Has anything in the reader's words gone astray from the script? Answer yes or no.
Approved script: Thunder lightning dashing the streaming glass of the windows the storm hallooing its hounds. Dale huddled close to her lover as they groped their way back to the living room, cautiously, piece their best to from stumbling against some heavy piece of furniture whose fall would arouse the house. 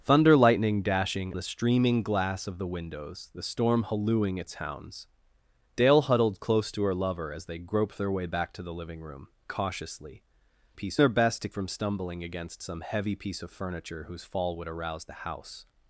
no